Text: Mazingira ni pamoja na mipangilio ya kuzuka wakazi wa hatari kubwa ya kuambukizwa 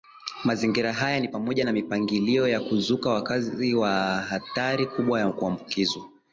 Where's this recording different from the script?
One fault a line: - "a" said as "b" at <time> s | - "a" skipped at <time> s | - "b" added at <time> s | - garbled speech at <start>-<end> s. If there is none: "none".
- "haya" added at 0.9 s